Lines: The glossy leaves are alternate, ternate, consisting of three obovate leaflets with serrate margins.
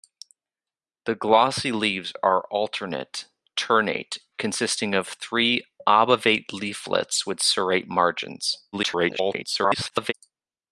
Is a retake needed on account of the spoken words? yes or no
yes